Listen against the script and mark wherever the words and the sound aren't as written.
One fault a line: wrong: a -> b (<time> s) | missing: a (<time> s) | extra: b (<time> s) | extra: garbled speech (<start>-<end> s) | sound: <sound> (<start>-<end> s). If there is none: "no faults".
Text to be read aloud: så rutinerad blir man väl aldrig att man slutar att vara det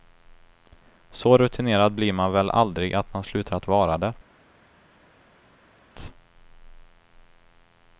no faults